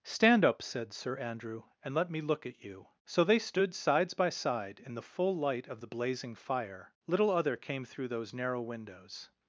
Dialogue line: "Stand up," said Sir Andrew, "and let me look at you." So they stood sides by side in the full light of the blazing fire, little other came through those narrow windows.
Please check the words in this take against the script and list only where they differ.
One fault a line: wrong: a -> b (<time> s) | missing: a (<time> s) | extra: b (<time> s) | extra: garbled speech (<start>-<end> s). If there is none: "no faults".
no faults